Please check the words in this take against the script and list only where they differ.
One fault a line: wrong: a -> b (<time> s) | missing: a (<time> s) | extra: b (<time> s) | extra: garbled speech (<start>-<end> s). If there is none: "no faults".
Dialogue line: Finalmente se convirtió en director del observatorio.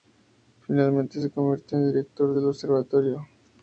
no faults